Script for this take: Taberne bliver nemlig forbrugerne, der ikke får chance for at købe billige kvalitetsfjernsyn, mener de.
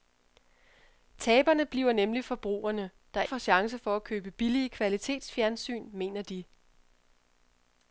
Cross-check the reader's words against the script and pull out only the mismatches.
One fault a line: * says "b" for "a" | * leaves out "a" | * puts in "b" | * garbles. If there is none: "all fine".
* leaves out "ikke"